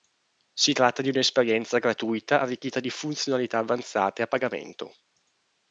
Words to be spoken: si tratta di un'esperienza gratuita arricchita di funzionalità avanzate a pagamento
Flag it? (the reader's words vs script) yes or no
no